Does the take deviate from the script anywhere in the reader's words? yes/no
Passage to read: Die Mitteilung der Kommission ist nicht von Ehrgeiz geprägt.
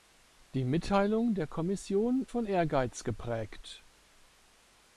yes